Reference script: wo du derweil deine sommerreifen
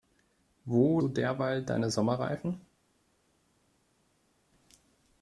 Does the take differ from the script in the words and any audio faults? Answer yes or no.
no